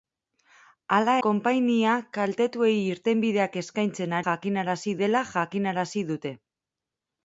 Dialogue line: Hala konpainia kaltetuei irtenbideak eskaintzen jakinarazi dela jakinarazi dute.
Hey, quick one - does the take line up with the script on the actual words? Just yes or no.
yes